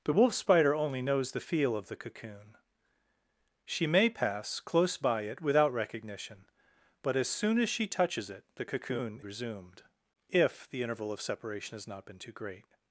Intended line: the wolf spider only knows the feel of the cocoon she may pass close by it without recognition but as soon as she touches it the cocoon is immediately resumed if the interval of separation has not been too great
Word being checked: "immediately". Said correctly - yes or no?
no